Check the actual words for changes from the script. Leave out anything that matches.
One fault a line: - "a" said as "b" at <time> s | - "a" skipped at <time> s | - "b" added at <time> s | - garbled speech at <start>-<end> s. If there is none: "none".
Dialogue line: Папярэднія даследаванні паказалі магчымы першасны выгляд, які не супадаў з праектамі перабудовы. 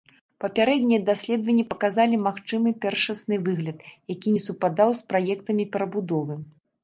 none